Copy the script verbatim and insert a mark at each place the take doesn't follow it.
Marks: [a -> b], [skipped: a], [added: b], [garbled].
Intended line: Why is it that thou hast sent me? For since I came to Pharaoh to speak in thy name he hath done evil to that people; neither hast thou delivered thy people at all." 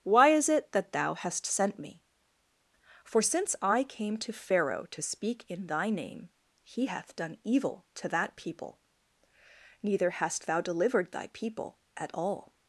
Why is it that thou hast sent me? For since I came to Pharaoh to speak in thy name he hath done evil to that people; neither hast thou delivered thy people at all."